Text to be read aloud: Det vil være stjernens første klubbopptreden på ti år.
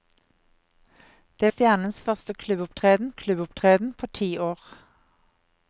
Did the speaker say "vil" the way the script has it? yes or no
no